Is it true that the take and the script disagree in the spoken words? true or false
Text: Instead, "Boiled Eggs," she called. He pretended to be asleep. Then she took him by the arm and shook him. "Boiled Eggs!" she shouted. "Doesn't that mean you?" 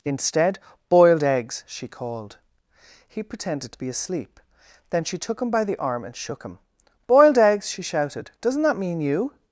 false